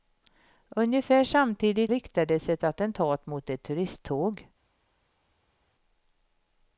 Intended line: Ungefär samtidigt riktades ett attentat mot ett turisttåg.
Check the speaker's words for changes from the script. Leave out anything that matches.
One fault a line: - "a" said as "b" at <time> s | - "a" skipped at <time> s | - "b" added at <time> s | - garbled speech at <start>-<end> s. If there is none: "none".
none